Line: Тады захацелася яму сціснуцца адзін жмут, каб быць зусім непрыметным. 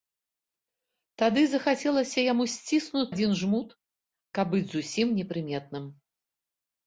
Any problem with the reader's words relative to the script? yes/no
no